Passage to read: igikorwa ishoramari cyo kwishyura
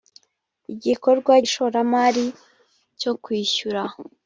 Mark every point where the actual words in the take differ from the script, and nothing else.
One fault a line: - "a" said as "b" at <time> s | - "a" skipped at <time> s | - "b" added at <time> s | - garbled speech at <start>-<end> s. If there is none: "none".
none